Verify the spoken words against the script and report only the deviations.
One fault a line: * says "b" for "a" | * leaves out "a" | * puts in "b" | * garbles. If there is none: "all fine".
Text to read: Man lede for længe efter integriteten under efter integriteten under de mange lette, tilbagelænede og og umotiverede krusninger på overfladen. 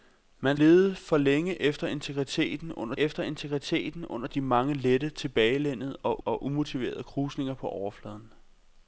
all fine